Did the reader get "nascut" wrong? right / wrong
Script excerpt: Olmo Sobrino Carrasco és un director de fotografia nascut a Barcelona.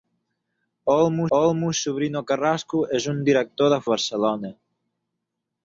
wrong